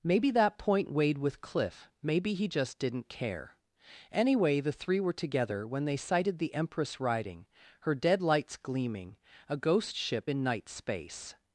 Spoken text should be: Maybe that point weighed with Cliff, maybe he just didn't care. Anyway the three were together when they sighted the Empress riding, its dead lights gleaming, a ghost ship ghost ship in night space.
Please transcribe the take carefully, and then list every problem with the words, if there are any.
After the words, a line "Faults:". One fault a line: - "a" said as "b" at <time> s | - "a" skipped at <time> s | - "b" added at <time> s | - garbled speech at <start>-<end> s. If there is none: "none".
Maybe that point weighed with Cliff, maybe he just didn't care. Anyway the three were together when they sighted the Empress riding, her dead lights gleaming, a ghost ship in night space.
Faults:
- "its" said as "her" at 7.8 s
- "ghost ship" skipped at 10.3 s